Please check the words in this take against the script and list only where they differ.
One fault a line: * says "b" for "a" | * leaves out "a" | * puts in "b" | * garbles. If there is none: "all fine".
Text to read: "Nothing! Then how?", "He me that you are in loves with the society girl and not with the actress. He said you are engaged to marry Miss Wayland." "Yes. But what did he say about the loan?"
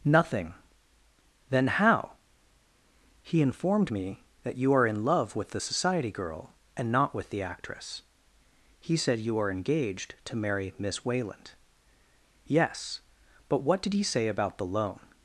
* puts in "informed"
* says "love" for "loves"